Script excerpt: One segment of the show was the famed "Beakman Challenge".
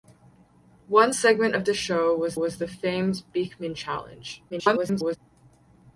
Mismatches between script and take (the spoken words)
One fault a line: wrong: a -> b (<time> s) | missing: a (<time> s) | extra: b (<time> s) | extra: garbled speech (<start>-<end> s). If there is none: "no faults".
extra: was (2.4 s)
extra: garbled speech (4.5-5.2 s)